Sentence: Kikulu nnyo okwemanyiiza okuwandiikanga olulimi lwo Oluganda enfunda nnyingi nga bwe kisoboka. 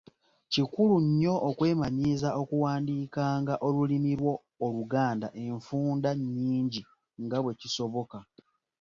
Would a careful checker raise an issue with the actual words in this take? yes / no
no